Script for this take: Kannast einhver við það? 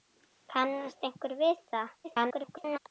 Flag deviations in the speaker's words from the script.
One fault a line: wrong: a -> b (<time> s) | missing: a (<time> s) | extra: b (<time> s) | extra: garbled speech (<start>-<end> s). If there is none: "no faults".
extra: garbled speech (2.0-2.8 s)